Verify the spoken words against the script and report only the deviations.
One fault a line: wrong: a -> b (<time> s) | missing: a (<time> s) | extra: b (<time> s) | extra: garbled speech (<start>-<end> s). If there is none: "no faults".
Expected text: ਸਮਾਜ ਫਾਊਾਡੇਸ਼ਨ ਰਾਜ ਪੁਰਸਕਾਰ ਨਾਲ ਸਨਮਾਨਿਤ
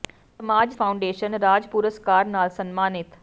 no faults